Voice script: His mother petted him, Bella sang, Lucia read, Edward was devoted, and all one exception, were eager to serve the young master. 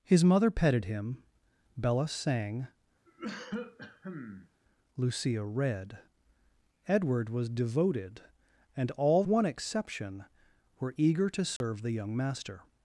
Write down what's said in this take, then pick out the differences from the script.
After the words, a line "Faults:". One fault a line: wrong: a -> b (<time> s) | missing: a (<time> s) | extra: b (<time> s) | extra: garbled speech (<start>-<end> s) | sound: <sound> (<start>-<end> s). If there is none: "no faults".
His mother petted him, Bella sang, Lucia read, Edward was devoted, and all one exception, were eager to serve the young master.
Faults:
sound: cough (3.0-4.5 s)
sound: dropout (11.6-11.6 s)